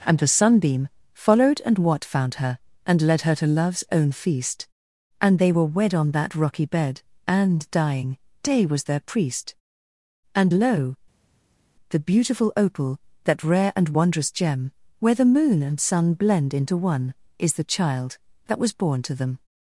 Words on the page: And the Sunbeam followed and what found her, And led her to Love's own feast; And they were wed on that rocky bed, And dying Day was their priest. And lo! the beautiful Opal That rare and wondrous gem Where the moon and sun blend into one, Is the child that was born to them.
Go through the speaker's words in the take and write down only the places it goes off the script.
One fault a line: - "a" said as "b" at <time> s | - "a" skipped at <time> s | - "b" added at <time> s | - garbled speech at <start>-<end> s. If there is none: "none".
none